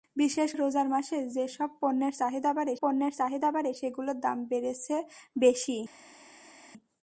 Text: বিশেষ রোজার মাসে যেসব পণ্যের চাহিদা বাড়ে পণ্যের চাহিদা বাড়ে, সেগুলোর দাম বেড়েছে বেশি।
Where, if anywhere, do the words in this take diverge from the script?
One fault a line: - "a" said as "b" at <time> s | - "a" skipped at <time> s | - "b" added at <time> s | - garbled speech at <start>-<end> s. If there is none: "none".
none